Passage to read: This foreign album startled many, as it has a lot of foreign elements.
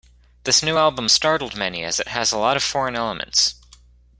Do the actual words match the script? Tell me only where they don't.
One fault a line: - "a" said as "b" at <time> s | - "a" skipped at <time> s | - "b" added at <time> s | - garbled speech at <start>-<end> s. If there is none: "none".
- "foreign" said as "new" at 0.6 s